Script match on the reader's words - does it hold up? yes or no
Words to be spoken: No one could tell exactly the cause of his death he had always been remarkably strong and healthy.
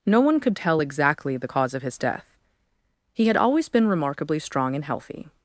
yes